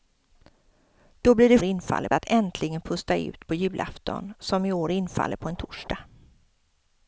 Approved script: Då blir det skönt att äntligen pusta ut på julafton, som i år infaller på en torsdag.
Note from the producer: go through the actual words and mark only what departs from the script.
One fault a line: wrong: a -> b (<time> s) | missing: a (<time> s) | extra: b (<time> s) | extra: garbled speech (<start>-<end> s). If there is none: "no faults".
wrong: skönt -> infaller (1.6 s)